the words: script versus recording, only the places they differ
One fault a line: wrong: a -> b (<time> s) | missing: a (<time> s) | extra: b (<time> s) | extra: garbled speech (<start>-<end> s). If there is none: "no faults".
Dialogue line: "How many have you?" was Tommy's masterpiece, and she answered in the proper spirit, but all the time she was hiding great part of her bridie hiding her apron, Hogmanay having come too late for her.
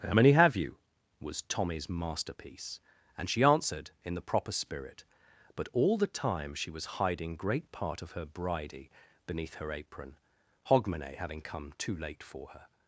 wrong: hiding -> beneath (9.3 s)